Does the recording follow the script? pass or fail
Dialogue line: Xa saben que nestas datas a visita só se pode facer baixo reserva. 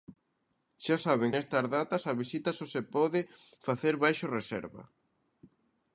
fail